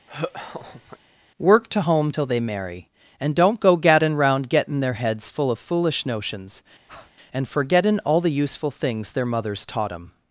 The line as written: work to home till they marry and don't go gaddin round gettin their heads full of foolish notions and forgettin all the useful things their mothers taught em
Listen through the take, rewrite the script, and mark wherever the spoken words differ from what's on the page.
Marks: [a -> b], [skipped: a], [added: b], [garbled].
work to home till they marry and don't go gaddin round gettin their heads full of foolish notions and forgettin all the useful things their mothers taught em